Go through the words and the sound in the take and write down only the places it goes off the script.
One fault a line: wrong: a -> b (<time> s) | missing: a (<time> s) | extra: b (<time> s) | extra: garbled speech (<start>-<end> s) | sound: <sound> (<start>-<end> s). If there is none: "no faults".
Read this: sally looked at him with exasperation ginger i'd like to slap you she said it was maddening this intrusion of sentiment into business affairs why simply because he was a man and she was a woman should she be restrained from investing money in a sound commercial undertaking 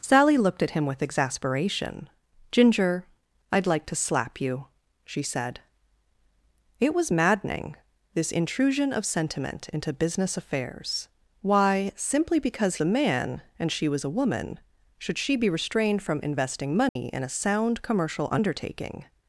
missing: he was (12.8 s)
sound: dropout (16.9-17.0 s)